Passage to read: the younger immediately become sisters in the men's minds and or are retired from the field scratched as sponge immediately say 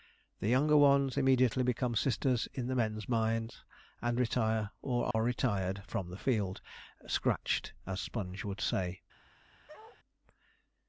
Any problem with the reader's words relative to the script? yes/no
yes